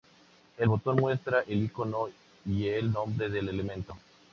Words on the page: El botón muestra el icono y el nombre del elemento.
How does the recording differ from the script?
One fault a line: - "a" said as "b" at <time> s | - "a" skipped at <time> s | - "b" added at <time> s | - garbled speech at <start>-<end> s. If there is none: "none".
none